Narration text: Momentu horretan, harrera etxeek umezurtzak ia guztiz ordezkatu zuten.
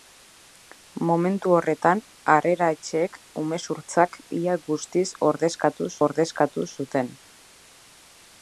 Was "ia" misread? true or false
false